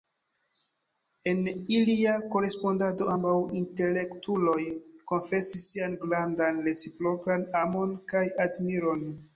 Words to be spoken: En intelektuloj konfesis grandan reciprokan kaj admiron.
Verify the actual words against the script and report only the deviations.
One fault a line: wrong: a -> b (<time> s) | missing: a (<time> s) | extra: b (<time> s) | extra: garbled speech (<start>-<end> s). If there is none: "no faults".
extra: ilia korespondado ambaŭ (1.8 s)
extra: sian (5.7 s)
extra: amon (7.7 s)